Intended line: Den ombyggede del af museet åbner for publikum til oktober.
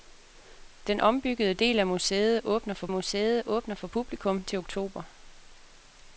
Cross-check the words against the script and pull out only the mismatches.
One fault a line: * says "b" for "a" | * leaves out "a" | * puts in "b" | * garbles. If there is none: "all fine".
* puts in "museet åbner for"